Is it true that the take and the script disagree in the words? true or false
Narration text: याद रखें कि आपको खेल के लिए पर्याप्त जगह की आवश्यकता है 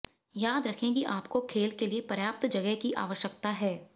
false